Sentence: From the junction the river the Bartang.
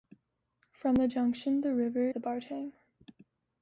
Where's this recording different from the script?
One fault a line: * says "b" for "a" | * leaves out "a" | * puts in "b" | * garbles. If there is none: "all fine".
all fine